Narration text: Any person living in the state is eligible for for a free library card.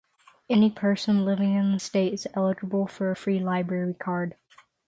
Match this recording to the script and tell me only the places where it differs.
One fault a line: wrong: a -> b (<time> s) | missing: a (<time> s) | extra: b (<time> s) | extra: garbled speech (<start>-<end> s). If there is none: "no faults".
missing: for (3.1 s)